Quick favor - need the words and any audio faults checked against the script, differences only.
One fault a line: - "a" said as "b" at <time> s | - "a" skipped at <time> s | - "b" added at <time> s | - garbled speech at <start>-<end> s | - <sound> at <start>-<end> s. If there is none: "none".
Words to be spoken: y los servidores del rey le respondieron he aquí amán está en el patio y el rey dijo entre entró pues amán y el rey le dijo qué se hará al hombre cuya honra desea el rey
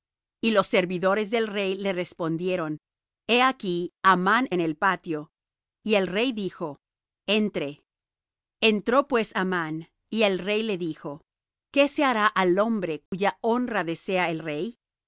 - "está" skipped at 4.5 s
- dropout at 13.1-13.1 s